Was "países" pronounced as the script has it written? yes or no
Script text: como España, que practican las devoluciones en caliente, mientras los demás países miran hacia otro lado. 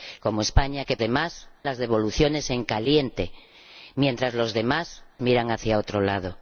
no